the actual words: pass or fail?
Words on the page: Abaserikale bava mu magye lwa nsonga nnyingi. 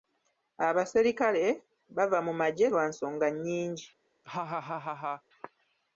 pass